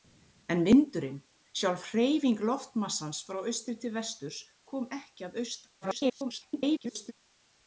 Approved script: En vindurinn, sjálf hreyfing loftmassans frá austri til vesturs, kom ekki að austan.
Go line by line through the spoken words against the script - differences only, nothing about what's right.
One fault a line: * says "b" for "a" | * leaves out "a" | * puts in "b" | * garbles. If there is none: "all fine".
* garbles